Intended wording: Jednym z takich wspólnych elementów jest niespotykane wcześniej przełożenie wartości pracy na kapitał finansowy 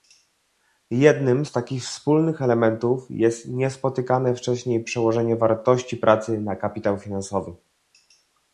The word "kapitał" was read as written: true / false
true